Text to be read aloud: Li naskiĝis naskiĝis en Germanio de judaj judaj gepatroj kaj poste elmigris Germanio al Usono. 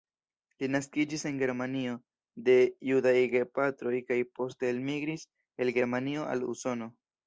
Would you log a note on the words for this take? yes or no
yes